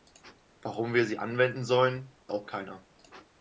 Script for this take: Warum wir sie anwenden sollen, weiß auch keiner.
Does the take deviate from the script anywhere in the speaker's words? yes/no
yes